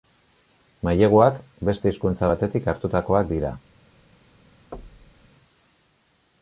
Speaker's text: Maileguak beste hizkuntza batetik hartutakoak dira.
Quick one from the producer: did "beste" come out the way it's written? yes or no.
yes